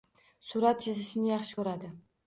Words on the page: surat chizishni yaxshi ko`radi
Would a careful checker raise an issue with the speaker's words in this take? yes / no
no